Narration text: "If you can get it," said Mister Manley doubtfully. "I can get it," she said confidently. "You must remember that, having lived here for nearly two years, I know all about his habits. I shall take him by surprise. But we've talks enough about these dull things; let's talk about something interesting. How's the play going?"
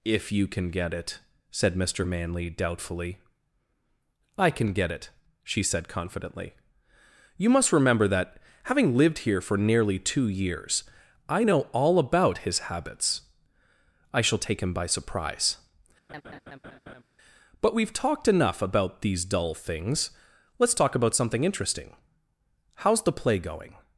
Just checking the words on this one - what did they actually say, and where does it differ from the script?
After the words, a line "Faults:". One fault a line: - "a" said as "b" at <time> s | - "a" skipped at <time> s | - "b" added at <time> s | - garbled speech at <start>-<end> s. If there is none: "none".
"If you can get it," said Mister Manley doubtfully. "I can get it," she said confidently. "You must remember that, having lived here for nearly two years, I know all about his habits. I shall take him by surprise. But we've talked enough about these dull things; let's talk about something interesting. How's the play going?"
Faults:
- "talks" said as "talked" at 17.9 s